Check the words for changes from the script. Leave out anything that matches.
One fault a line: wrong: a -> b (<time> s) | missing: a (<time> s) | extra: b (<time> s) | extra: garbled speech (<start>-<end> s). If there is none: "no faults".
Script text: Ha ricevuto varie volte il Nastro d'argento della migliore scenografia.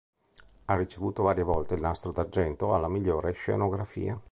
wrong: della -> alla (2.7 s)